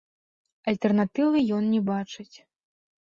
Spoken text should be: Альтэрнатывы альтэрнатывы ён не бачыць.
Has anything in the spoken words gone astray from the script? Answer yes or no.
yes